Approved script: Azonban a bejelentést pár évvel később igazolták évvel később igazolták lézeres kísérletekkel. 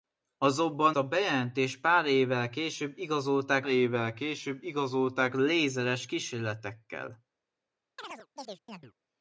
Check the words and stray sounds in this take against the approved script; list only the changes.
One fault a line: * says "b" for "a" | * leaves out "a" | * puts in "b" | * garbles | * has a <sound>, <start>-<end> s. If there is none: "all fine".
* has a chirp, 8.0-8.9 s